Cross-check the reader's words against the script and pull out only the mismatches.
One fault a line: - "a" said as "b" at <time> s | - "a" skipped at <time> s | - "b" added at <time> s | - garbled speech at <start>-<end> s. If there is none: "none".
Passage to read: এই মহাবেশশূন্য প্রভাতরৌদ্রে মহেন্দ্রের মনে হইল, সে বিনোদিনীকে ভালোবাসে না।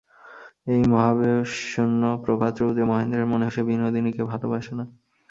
- "হইল" skipped at 3.5 s